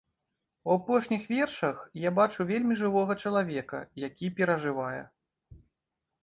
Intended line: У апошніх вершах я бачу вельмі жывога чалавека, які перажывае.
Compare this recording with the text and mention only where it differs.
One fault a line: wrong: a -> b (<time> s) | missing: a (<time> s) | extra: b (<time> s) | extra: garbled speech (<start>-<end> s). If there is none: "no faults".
no faults